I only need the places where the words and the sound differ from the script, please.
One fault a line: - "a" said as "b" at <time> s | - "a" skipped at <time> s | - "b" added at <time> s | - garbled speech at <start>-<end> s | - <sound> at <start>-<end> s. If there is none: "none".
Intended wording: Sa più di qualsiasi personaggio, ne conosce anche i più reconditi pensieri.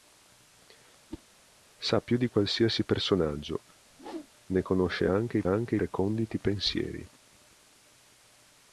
- whoosh at 1.1-1.2 s
- whoosh at 3.9-4.3 s
- "più" said as "anche" at 5.4 s